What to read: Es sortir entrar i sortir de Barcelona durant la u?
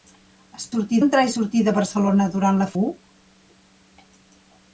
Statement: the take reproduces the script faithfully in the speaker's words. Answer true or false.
true